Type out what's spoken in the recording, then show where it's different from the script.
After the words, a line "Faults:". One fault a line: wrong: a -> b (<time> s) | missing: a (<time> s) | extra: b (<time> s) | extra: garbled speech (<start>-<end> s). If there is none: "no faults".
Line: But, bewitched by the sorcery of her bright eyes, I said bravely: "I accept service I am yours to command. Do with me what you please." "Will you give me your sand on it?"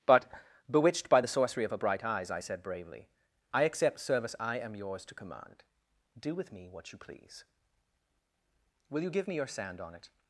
But, bewitched by the sorcery of her bright eyes, I said bravely: "I accept service I am yours to command. Do with me what you please." "Will you give me your sand on it?"
Faults:
no faults